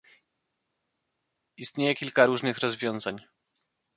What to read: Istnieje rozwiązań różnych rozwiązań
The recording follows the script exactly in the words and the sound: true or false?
false